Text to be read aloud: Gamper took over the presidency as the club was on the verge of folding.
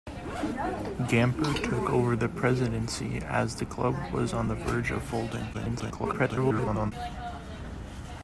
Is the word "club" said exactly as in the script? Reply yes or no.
yes